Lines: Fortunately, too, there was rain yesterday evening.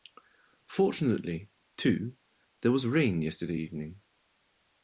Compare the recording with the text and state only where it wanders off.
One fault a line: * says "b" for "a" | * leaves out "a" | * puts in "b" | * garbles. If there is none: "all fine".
all fine